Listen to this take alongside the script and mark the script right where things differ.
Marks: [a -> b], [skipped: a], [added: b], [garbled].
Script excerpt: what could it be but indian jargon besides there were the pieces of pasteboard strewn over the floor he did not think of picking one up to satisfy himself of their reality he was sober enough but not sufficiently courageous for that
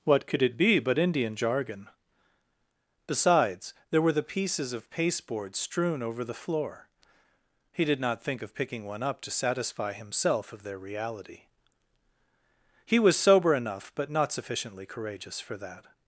what could it be but indian jargon besides there were the pieces of pasteboard strewn over the floor he did not think of picking one up to satisfy himself of their reality he was sober enough but not sufficiently courageous for that